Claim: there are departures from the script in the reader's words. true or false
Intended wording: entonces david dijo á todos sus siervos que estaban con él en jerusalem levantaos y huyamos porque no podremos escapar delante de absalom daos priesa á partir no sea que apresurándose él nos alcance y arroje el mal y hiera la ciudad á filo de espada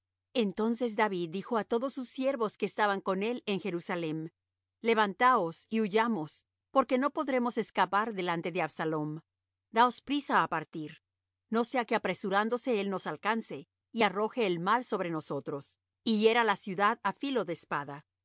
true